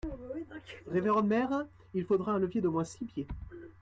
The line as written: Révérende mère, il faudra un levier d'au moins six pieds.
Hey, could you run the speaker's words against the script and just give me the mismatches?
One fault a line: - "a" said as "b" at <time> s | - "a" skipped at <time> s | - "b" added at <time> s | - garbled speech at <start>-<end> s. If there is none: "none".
none